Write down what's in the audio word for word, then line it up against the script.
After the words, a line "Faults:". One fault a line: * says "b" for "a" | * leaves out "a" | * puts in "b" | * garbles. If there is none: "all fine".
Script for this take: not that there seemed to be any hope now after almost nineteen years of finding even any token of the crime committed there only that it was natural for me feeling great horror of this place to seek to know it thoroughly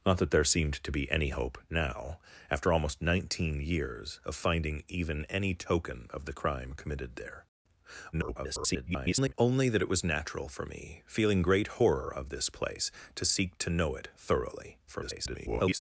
not that there seemed to be any hope now after almost nineteen years of finding even any token of the crime committed there [garbled] only that it was natural for me feeling great horror of this place to seek to know it thoroughly [garbled]
Faults:
* garbles
* garbles